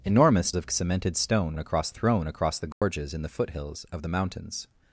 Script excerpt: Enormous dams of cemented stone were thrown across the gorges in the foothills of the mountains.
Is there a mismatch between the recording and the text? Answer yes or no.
yes